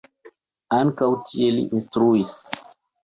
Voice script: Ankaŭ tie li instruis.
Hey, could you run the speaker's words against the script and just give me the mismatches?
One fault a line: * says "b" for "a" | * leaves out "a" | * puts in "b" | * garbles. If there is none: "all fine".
all fine